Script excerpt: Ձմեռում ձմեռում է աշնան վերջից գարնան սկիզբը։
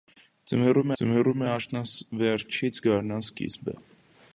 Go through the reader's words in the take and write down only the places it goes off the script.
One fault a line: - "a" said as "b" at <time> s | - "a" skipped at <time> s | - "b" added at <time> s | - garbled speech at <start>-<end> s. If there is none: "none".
none